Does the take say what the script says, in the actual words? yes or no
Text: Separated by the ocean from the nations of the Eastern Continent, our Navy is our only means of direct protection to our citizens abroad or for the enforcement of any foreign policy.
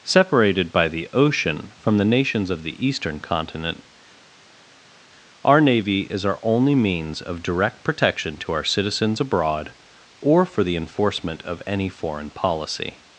yes